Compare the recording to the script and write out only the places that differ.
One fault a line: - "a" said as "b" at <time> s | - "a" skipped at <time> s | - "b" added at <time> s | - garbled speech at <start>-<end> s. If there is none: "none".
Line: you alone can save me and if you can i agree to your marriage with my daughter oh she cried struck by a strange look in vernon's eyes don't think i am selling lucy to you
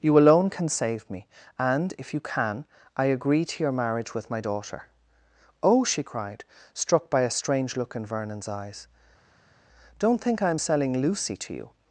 none